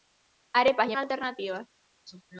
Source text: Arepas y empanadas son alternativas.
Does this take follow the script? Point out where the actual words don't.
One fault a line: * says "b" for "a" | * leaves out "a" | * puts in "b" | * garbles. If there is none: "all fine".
* leaves out "empanadas son"